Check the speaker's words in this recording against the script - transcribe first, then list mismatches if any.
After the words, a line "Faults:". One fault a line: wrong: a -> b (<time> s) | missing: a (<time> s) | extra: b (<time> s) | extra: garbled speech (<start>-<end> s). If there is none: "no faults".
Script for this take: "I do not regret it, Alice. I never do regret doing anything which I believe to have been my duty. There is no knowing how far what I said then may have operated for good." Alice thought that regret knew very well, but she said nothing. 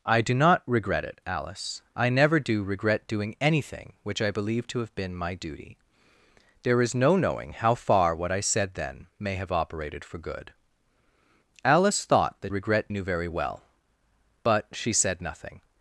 "I do not regret it, Alice. I never do regret doing anything which I believe to have been my duty. There is no knowing how far what I said then may have operated for good." Alice thought that regret knew very well, but she said nothing.
Faults:
no faults